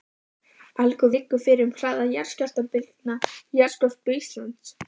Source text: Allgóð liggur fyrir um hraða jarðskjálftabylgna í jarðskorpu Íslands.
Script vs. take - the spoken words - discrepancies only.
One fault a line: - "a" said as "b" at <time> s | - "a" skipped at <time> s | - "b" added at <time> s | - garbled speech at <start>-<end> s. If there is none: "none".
none